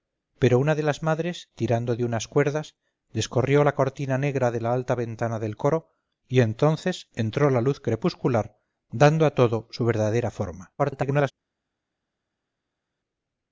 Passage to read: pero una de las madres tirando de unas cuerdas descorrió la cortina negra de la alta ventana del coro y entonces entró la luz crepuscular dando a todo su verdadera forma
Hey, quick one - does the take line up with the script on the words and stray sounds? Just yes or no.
no